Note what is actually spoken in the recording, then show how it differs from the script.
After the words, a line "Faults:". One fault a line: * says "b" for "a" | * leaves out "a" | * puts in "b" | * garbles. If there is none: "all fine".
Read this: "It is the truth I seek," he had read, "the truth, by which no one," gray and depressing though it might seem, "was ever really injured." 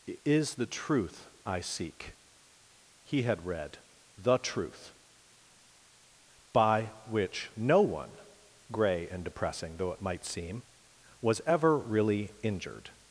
"It is the truth I seek," he had read, "the truth, by which no one," gray and depressing though it might seem, "was ever really injured."
Faults:
all fine